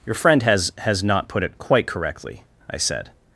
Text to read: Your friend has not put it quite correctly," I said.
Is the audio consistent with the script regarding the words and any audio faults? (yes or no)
no